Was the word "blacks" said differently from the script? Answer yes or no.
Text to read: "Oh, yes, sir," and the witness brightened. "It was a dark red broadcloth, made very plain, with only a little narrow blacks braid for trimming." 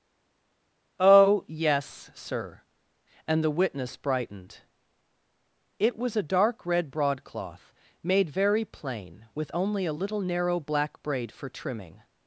yes